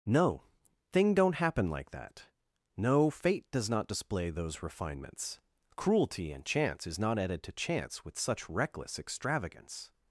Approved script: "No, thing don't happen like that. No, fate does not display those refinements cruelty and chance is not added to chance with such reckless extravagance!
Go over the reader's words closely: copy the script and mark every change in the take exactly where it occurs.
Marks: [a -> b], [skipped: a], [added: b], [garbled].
"No, thing don't happen like that. No, fate does not display those refinements cruelty and chance is not added to chance with such reckless extravagance!